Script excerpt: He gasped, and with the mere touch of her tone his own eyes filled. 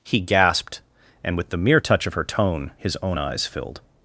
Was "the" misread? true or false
false